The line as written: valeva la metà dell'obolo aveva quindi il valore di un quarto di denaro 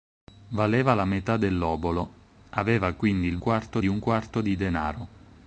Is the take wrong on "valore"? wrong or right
wrong